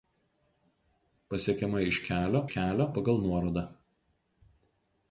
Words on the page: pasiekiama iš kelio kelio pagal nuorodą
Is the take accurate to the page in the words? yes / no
yes